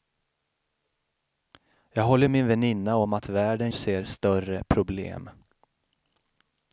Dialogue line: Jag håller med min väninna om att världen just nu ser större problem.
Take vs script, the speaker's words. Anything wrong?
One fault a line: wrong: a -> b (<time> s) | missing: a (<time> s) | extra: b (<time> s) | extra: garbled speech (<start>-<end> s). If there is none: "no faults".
missing: med (2.3 s)
missing: just nu (3.7 s)